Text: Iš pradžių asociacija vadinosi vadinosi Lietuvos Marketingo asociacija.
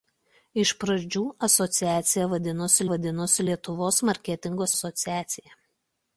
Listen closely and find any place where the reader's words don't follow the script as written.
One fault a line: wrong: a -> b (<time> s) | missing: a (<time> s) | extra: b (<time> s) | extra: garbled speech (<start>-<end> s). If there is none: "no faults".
no faults